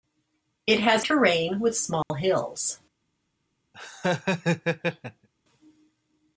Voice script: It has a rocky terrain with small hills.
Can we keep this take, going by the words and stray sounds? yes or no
no